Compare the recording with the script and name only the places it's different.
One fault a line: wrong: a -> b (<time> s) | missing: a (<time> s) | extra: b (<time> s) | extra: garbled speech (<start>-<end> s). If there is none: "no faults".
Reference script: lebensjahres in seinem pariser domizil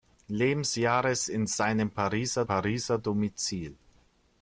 extra: pariser (2.4 s)